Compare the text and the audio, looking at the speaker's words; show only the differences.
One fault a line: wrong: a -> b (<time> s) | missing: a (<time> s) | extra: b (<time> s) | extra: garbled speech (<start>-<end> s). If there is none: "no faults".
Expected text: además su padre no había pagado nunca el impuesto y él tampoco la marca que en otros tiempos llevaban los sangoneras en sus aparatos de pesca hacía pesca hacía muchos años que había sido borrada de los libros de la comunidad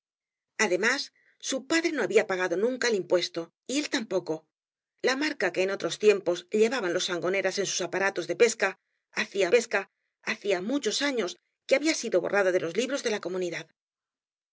no faults